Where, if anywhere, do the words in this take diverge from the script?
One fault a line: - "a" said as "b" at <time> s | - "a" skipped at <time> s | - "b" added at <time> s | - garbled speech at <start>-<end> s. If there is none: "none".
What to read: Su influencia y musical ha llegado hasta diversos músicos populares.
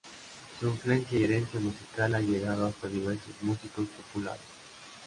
- "herencia" added at 1.2 s